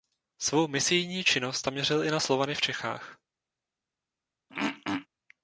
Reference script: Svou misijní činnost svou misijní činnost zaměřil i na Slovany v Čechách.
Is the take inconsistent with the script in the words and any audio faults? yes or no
yes